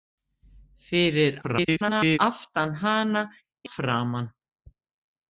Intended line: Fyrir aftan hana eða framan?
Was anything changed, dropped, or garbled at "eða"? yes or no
yes